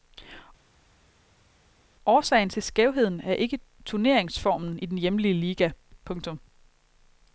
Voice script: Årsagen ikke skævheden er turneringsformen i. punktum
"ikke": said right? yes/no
no